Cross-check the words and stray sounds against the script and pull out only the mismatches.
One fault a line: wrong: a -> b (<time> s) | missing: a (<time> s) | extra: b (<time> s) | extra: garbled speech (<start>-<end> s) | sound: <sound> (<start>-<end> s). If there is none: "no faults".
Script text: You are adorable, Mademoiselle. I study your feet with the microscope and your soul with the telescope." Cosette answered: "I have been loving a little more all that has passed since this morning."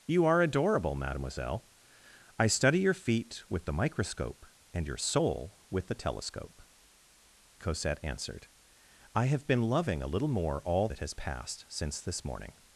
no faults